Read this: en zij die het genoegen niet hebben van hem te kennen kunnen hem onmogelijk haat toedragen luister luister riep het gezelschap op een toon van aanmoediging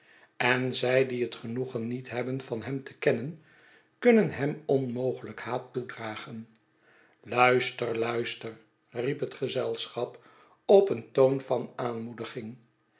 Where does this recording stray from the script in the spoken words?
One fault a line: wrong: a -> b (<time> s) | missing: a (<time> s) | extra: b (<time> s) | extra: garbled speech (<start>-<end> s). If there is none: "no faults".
no faults